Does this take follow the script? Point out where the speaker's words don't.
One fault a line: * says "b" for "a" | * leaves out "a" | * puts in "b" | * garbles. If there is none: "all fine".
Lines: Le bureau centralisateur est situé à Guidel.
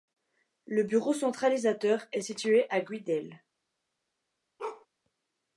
all fine